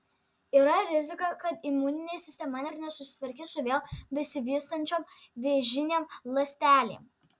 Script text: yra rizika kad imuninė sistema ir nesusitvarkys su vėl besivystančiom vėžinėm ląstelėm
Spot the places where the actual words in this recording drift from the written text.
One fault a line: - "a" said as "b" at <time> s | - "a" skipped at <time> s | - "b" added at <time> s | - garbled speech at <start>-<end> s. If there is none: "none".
none